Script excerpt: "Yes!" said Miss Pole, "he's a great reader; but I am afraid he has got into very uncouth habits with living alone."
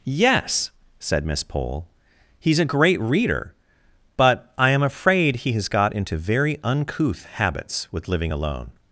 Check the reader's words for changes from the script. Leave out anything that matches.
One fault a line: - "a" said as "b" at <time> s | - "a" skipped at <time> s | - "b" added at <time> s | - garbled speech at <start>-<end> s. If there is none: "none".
none